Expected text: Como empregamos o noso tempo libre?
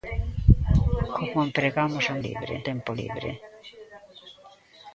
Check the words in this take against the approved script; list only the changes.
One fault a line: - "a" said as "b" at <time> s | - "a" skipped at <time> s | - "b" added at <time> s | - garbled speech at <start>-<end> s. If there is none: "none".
- "noso" said as "libre" at 2.3 s